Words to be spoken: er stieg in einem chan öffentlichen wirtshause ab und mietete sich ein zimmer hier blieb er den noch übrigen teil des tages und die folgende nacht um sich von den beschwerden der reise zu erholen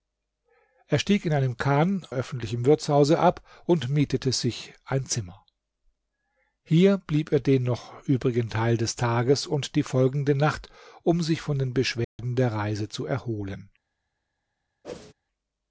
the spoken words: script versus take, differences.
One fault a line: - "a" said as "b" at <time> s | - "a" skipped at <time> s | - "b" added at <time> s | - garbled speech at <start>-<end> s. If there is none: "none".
none